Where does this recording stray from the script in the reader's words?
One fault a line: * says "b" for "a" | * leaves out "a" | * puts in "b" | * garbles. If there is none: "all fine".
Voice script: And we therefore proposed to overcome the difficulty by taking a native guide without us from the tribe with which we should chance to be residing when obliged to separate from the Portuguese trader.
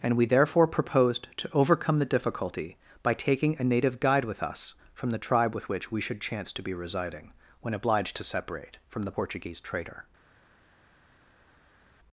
* says "with" for "without"